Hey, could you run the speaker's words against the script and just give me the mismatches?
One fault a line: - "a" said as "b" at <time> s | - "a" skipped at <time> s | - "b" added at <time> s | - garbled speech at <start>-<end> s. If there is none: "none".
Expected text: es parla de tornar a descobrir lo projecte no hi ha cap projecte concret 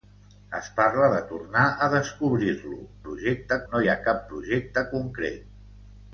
none